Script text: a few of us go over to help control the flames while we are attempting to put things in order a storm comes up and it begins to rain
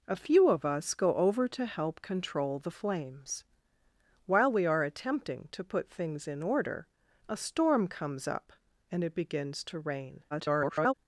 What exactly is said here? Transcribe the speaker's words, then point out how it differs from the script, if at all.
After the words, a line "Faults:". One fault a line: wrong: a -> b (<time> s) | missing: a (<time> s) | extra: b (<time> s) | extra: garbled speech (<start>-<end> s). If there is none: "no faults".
a few of us go over to help control the flames while we are attempting to put things in order a storm comes up and it begins to rain [garbled]
Faults:
extra: garbled speech (10.3-10.9 s)